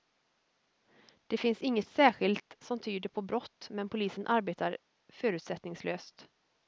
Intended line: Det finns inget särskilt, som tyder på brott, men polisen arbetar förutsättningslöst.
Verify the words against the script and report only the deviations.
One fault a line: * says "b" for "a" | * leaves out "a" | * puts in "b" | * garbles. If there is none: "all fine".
all fine